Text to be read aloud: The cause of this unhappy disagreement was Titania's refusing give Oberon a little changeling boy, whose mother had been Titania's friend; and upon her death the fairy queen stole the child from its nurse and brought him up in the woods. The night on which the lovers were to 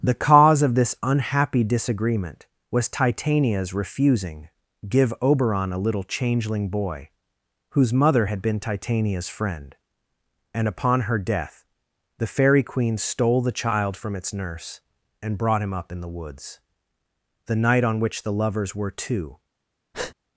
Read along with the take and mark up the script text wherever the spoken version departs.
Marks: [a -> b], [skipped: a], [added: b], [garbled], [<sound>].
The cause of this unhappy disagreement was Titania's refusing give Oberon a little changeling boy, whose mother had been Titania's friend; and upon her death the fairy queen stole the child from its nurse and brought him up in the woods. The night on which the lovers were to [breath]